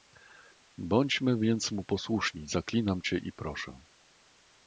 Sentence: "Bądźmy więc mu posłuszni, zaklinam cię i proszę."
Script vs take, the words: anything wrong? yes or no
no